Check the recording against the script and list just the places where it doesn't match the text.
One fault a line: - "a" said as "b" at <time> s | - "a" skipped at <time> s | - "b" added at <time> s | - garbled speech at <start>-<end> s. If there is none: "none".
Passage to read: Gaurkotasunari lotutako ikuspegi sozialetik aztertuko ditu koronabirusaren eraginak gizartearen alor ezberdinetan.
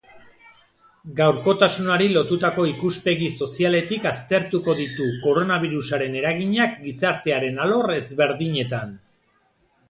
none